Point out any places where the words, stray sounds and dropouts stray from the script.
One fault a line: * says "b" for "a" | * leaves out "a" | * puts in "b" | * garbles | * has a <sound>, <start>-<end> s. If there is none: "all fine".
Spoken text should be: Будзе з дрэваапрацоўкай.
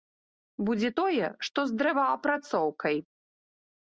* puts in "тое што"